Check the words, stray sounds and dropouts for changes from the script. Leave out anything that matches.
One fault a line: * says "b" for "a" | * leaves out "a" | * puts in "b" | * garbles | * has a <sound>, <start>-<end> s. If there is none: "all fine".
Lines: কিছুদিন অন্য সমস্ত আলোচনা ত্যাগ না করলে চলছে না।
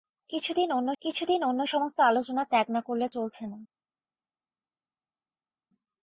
* puts in "কিছুদিন অন্য"